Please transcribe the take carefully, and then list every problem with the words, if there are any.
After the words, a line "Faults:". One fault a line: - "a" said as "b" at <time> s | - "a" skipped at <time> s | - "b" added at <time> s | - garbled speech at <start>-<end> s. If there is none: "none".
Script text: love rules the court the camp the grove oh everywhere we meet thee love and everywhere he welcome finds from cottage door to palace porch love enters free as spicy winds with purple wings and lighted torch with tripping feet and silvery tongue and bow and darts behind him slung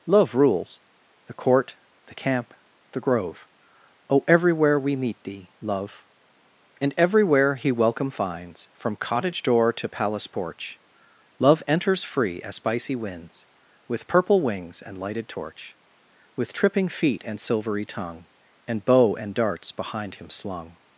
love rules the court the camp the grove oh everywhere we meet thee love and everywhere he welcome finds from cottage door to palace porch love enters free as spicy winds with purple wings and lighted torch with tripping feet and silvery tongue and bow and darts behind him slung
Faults:
none